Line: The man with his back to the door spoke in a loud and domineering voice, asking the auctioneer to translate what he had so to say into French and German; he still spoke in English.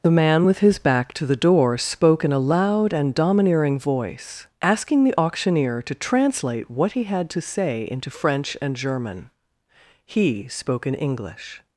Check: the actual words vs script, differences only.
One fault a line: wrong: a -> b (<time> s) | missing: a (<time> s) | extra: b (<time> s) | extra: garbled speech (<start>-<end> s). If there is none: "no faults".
missing: so (7.3 s)
missing: still (10.5 s)